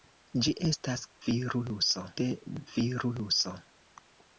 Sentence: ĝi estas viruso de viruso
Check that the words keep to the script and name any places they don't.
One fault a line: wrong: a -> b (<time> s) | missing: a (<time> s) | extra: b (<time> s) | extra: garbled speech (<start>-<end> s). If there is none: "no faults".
no faults